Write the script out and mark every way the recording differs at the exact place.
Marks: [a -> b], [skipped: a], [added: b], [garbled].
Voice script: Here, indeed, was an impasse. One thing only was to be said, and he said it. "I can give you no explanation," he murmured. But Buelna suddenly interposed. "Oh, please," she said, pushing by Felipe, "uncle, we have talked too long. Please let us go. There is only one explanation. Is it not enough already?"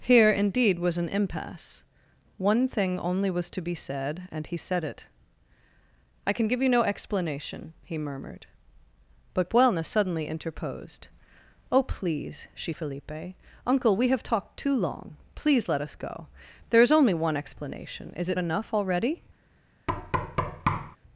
Here, indeed, was an impasse. One thing only was to be said, and he said it. "I can give you no explanation," he murmured. But Buelna suddenly interposed. "Oh, please," she [skipped: said, pushing by] Felipe, "uncle, we have talked too long. Please let us go. There is only one explanation. Is it [skipped: not] enough already?"